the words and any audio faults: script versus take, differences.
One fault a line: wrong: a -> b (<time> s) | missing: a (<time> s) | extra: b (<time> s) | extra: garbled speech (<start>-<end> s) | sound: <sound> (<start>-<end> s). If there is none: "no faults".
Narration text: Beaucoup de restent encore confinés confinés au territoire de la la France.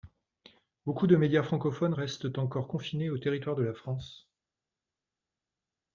extra: médias francophones (1.1 s)
missing: confinés (3.1 s)
missing: la (3.7 s)